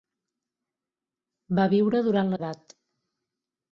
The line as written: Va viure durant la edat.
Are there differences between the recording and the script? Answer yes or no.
no